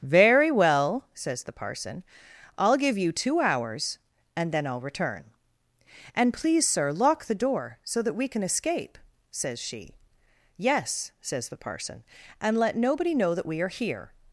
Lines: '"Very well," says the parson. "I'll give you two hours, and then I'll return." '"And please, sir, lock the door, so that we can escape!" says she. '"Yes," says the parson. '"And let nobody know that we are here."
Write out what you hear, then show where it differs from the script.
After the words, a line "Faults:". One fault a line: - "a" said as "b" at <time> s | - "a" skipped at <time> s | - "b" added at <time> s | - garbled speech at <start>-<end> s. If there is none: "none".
'"Very well," says the parson. "I'll give you two hours, and then I'll return." '"And please, sir, lock the door, so that we can escape!" says she. '"Yes," says the parson. '"And let nobody know that we are here."
Faults:
none